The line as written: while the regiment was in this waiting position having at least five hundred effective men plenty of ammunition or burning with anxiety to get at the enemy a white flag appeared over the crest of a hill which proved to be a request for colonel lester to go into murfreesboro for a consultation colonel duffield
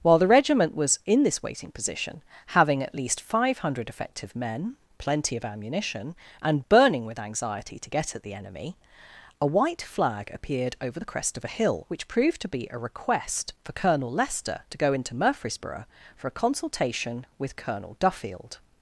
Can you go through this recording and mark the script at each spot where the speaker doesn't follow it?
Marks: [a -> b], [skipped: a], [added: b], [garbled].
while the regiment was in this waiting position having at least five hundred effective men plenty of ammunition [or -> and] burning with anxiety to get at the enemy a white flag appeared over the crest of a hill which proved to be a request for colonel lester to go into murfreesboro for a consultation [added: with] colonel duffield